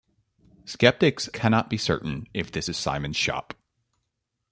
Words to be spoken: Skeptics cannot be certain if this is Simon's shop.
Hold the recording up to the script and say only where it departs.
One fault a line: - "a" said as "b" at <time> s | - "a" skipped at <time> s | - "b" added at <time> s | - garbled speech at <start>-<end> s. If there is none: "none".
none